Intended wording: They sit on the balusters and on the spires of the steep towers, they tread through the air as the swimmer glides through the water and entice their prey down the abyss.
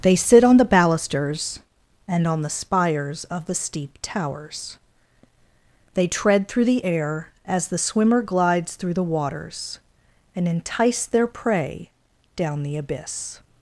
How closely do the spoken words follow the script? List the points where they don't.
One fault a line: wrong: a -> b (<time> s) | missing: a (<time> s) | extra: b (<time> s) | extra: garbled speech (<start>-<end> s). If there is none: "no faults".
wrong: water -> waters (9.0 s)